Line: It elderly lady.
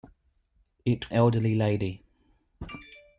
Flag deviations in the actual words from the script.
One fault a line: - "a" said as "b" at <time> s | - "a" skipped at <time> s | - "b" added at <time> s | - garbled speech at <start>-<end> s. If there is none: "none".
none